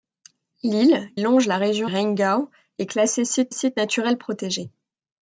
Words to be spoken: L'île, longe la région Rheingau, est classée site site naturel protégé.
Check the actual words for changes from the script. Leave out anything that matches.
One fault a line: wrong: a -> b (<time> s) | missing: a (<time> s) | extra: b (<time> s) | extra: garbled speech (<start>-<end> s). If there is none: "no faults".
no faults